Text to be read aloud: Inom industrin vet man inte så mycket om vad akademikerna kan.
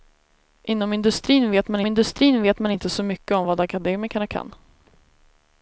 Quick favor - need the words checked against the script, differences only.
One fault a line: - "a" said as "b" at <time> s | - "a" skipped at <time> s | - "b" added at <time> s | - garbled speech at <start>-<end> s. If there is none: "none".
- "industrin vet man" added at 1.9 s